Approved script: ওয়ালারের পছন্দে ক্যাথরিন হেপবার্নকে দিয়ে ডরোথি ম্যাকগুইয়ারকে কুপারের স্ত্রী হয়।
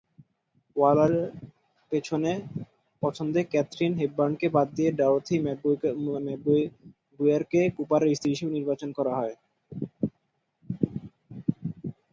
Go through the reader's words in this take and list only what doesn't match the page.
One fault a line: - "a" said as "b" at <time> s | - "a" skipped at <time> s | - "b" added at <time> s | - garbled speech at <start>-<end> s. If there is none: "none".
- "বাদ" added at 4.6 s
- "হিসেবে নির্বাচন করা" added at 8.3 s